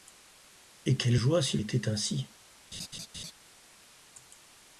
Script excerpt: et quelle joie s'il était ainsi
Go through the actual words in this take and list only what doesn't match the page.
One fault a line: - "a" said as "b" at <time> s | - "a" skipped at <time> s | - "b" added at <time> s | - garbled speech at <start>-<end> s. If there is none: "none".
none